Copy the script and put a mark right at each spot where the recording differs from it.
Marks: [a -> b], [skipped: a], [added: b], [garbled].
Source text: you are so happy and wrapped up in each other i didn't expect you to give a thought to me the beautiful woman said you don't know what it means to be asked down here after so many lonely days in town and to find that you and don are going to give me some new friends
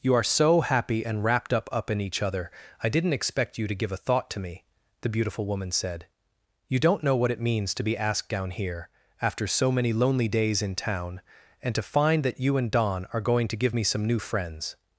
you are so happy and wrapped up [added: up] in each other i didn't expect you to give a thought to me the beautiful woman said you don't know what it means to be asked down here after so many lonely days in town and to find that you and don are going to give me some new friends